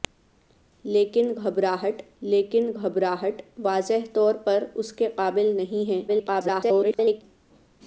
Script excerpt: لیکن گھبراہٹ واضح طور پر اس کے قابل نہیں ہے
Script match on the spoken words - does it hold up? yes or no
no